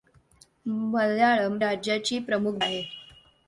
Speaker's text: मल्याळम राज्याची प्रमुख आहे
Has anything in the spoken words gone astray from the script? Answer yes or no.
no